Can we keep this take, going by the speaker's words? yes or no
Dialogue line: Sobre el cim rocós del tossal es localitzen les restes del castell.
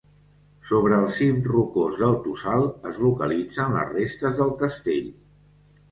yes